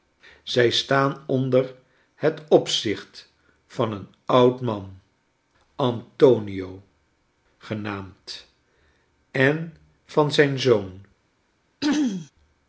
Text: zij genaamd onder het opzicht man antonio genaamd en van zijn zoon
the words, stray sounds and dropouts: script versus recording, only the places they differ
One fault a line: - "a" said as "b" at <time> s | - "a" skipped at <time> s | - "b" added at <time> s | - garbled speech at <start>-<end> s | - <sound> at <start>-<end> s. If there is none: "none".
- "genaamd" said as "staan" at 0.7 s
- "van een oud" added at 3.7 s
- throat clearing at 11.8-12.3 s